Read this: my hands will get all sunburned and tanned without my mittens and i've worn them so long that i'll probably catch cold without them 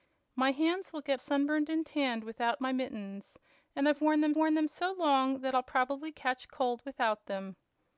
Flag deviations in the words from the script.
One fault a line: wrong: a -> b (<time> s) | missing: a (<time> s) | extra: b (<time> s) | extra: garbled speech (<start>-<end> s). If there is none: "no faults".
missing: all (1.2 s)
extra: worn them (4.4 s)